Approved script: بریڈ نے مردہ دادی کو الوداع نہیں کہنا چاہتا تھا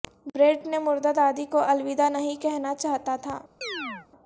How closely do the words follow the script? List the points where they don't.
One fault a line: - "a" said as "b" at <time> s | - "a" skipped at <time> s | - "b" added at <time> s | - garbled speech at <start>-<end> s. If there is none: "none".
none